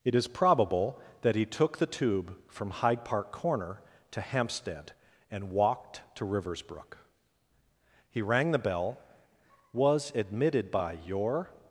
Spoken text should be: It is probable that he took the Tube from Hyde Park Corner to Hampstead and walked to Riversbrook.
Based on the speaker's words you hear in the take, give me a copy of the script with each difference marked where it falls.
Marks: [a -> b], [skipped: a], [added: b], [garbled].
It is probable that he took the Tube from Hyde Park Corner to Hampstead and walked to Riversbrook. [added: He rang the bell was admitted by your]